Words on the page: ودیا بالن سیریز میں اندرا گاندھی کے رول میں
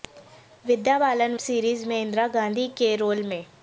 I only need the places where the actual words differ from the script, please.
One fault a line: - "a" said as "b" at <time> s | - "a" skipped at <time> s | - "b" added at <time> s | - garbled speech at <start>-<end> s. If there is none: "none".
none